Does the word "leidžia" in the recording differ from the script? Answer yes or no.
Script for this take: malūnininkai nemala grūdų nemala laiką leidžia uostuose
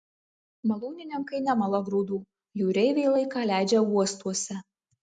no